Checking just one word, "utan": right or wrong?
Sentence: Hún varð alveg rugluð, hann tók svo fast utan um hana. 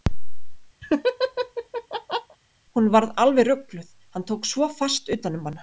right